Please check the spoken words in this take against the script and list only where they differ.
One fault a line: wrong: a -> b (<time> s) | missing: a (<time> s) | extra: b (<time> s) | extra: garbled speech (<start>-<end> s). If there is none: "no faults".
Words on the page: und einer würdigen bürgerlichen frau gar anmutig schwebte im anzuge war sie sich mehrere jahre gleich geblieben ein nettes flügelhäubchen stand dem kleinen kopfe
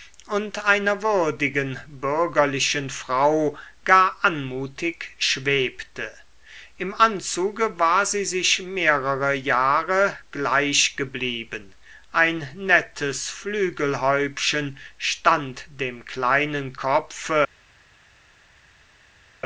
no faults